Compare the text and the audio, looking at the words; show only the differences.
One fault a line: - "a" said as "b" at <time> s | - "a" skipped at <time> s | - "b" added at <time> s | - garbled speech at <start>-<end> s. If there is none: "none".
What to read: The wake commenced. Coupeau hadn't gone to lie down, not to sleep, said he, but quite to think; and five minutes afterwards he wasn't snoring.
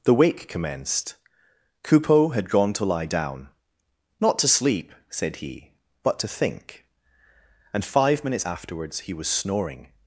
- "hadn't" said as "had" at 2.3 s
- "quite" skipped at 6.2 s
- "wasn't" said as "was" at 9.1 s